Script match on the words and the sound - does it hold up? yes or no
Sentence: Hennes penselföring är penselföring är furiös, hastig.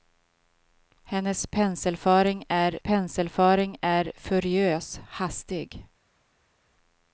yes